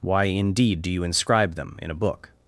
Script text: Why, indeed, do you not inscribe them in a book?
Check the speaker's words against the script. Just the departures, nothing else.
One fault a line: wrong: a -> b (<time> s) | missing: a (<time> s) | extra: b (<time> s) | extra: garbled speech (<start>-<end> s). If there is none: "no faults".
missing: not (1.0 s)